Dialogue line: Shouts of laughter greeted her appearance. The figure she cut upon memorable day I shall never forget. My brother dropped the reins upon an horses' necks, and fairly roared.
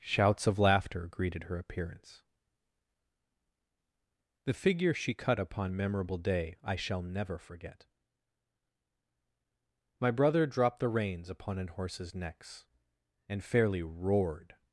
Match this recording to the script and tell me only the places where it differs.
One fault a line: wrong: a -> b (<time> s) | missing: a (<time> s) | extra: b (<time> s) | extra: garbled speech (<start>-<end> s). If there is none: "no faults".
no faults